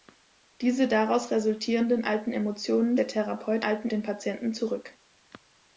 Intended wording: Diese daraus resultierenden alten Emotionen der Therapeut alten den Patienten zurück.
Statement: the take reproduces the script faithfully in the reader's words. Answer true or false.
true